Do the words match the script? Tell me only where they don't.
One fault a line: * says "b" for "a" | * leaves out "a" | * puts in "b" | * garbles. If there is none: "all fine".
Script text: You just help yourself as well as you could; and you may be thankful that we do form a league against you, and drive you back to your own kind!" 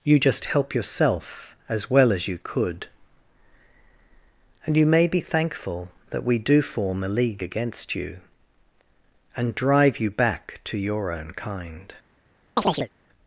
all fine